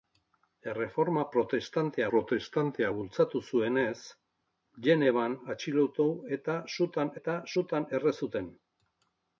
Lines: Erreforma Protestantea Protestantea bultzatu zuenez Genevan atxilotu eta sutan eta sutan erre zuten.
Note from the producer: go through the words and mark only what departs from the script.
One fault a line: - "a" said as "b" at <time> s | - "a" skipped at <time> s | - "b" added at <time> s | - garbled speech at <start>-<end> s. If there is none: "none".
none